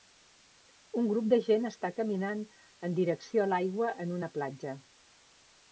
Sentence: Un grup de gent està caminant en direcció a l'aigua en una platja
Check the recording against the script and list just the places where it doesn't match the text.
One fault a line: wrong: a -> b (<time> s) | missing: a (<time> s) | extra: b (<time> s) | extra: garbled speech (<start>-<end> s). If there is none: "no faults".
no faults